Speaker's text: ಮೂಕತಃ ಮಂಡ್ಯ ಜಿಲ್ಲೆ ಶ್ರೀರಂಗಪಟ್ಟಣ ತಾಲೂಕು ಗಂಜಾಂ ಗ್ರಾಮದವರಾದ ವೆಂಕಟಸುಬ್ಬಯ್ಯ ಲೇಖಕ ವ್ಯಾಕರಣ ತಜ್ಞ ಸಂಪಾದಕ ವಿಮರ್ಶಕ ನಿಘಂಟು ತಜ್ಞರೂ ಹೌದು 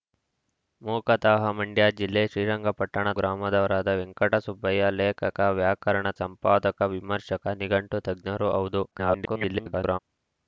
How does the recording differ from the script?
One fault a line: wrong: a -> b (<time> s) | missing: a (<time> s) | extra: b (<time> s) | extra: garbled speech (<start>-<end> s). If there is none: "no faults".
missing: ತಾಲೂಕು ಗಂಜಾಂ (3.0 s)
missing: ತಜ್ಞ (6.1 s)
extra: garbled speech (8.9-10.0 s)